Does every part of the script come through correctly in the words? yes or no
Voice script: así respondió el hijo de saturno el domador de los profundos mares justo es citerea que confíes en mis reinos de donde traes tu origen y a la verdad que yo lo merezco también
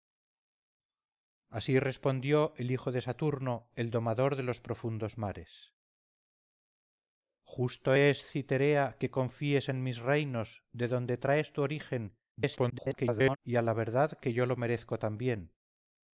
no